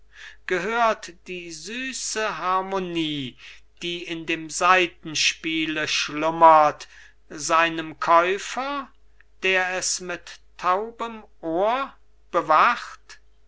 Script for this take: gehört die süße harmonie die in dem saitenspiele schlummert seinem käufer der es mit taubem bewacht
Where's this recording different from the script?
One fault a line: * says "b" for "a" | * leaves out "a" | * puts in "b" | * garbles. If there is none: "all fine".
* puts in "ohr"